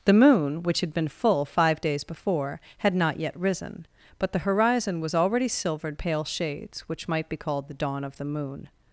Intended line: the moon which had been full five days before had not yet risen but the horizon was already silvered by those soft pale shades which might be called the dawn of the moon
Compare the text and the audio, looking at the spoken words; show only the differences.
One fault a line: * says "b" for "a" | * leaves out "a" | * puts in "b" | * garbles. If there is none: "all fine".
* leaves out "by those soft"